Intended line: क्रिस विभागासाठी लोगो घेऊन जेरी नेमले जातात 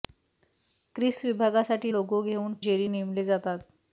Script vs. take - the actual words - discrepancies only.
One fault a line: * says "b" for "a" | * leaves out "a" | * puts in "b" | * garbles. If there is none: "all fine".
all fine